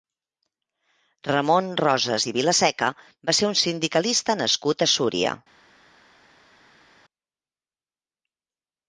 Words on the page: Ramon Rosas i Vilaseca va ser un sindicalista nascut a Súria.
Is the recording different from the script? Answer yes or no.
no